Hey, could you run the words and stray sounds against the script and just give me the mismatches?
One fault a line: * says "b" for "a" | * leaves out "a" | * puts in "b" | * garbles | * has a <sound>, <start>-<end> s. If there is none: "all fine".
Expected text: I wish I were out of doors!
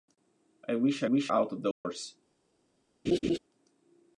* says "wish" for "were"
* has a dropout, 1.7-1.9 s
* has a laugh, 3.1-3.4 s